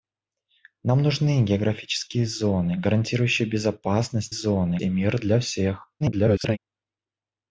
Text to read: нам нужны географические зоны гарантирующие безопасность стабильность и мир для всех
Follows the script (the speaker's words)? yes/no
no